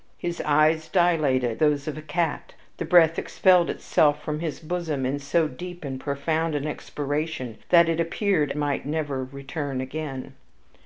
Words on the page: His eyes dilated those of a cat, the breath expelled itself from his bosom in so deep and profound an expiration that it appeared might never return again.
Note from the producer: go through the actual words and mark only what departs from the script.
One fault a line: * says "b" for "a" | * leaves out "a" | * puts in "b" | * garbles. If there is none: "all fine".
all fine